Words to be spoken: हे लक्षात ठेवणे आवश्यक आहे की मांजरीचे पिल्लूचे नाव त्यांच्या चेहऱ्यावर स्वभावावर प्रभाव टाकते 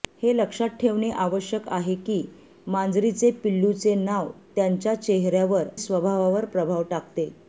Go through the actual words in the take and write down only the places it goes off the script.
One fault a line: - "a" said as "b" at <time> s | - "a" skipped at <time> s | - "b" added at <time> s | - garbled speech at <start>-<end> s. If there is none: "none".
none